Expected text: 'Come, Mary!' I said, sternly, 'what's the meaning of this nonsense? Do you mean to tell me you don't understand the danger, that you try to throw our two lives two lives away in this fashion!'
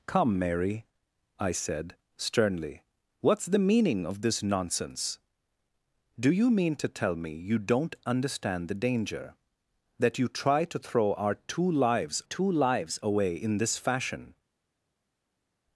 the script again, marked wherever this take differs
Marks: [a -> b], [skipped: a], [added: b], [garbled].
'Come, Mary!' I said, sternly, 'what's the meaning of this nonsense? Do you mean to tell me you don't understand the danger, that you try to throw our two lives two lives away in this fashion!'